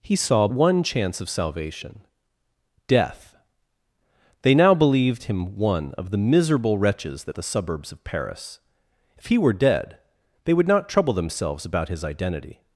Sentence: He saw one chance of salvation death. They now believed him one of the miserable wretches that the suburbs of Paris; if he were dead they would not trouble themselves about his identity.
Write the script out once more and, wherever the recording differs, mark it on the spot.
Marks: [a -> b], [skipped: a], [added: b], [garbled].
He saw one chance of salvation death. They now believed him one of the miserable wretches that the suburbs of Paris; if he were dead they would not trouble themselves about his identity.